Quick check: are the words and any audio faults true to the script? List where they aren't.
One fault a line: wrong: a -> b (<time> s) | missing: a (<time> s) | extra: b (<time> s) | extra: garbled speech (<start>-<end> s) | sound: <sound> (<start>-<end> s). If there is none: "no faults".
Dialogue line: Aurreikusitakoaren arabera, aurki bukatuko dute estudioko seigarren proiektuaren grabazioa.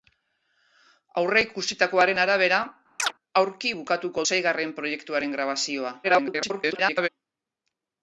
sound: chirp (3.0-3.1 s)
missing: dute estudioko (4.2 s)
extra: garbled speech (6.0-7.1 s)